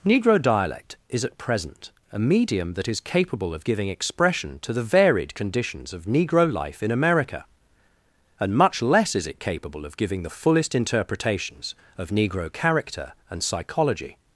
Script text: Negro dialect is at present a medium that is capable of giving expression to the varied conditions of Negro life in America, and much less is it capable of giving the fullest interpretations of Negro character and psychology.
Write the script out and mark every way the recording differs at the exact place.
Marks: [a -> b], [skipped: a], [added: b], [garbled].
Negro dialect is at present a medium that is capable of giving expression to the varied conditions of Negro life in America, and much less is it capable of giving the fullest interpretations of Negro character and psychology.